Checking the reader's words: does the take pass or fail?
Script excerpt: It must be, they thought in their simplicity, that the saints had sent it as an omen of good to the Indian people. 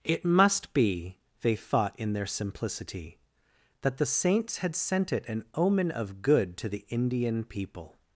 fail